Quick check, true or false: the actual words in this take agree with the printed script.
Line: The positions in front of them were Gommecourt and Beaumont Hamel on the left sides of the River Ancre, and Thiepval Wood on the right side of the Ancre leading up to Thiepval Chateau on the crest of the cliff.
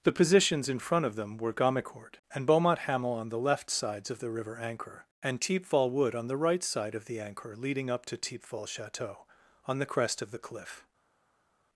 true